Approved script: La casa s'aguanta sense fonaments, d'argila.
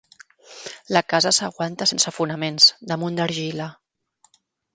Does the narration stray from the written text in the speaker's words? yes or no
yes